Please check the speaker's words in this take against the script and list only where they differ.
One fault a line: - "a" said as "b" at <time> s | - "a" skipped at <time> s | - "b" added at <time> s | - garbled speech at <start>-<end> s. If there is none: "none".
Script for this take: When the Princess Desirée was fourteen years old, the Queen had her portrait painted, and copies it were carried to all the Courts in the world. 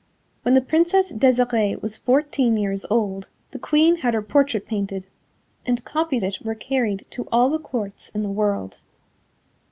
none